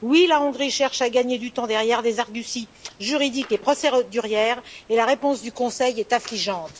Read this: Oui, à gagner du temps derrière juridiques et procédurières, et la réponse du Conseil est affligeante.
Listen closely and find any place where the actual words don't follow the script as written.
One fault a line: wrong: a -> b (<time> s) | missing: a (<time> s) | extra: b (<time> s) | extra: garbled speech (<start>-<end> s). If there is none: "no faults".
extra: la Hongrie cherche (0.3 s)
extra: des arguties (2.0 s)